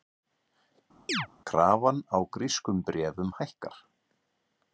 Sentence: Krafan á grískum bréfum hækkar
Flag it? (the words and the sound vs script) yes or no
yes